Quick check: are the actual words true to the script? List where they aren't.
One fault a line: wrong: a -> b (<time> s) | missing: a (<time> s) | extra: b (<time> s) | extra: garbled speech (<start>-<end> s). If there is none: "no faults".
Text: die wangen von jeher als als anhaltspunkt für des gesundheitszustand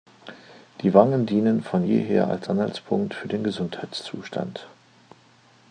extra: dienen (1.3 s)
missing: als (2.5 s)
wrong: des -> den (3.3 s)